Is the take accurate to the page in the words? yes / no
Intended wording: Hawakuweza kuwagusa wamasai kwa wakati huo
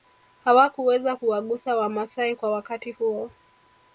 yes